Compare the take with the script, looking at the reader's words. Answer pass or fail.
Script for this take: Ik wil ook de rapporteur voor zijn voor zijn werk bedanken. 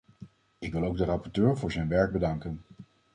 fail